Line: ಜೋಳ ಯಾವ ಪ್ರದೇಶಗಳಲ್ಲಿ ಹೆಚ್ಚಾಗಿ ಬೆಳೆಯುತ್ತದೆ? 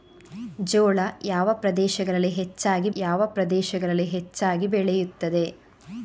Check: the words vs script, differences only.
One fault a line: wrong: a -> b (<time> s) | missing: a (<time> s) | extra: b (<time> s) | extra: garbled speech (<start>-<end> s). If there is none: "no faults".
extra: ಯಾವ ಪ್ರದೇಶಗಳಲ್ಲಿ ಹೆಚ್ಚಾಗಿ (2.9 s)